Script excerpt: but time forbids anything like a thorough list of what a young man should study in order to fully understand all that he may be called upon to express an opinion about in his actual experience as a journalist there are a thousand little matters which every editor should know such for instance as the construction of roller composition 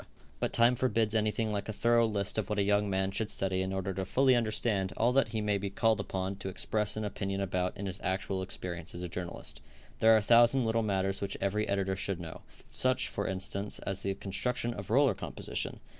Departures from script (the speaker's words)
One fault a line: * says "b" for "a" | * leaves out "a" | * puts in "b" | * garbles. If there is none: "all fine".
all fine